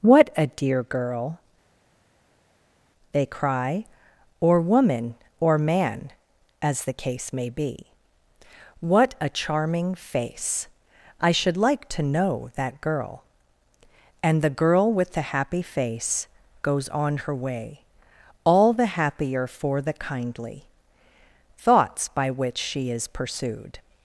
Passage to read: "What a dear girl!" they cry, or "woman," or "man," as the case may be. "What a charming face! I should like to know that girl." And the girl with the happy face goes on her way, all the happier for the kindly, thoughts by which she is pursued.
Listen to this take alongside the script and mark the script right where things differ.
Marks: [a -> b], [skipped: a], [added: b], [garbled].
"What a dear girl!" they cry, or "woman," or "man," as the case may be. "What a charming face! I should like to know that girl." And the girl with the happy face goes on her way, all the happier for the kindly, thoughts by which she is pursued.